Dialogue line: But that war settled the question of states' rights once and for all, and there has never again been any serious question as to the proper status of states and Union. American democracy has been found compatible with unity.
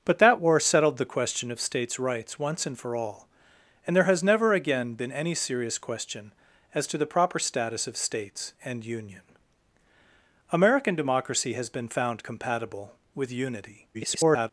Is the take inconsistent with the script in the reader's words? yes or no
yes